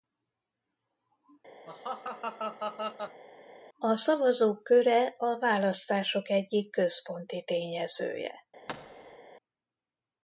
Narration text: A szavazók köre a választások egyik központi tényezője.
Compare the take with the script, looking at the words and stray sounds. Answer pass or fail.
fail